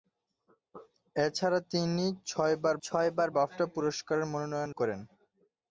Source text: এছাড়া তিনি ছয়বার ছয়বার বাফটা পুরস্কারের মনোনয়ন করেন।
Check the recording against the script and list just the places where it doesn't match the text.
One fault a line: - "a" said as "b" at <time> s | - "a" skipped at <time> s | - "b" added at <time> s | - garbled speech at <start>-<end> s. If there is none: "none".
none